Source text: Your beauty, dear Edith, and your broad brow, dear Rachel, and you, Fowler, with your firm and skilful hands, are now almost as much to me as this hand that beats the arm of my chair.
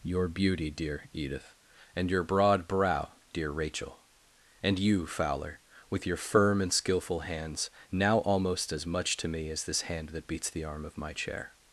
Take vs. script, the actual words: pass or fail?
fail